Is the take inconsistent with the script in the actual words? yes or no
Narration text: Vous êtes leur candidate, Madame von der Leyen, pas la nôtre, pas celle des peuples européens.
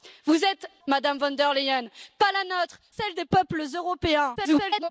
yes